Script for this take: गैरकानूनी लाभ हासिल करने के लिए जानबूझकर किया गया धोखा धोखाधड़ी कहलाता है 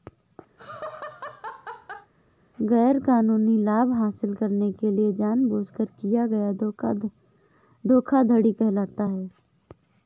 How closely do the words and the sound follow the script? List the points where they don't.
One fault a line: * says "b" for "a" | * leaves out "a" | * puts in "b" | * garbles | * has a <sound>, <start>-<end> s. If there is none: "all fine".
* has a laugh, 0.6-2.1 s